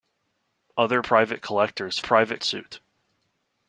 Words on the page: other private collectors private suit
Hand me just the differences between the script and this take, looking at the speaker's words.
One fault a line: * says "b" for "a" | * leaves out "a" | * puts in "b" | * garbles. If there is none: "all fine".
all fine